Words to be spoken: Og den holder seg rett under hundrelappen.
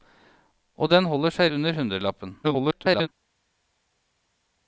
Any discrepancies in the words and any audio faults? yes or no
yes